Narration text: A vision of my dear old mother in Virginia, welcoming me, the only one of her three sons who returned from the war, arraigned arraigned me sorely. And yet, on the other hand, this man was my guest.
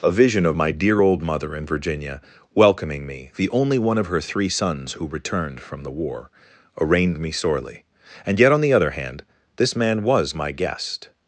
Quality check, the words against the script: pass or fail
fail